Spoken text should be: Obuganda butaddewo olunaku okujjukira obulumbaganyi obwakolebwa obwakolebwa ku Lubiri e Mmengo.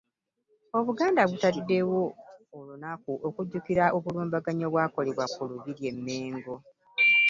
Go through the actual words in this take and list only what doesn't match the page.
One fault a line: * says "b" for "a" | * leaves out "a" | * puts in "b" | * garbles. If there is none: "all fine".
* leaves out "obwakolebwa"